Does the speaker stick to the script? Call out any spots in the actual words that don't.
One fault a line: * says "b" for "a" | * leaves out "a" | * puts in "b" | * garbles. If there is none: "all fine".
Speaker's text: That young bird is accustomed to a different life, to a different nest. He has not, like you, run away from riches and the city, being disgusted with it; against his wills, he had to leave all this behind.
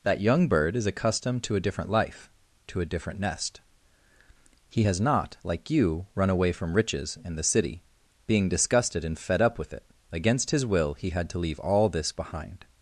* puts in "and fed up"
* says "will" for "wills"